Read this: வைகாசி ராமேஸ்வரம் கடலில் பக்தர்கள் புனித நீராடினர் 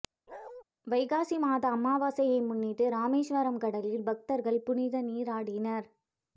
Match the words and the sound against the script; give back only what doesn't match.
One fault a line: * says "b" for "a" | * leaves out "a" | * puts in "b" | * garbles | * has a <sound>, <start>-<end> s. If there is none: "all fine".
* has a bark, 0.3-0.6 s
* puts in "மாத அமாவாசையை முன்னிட்டு"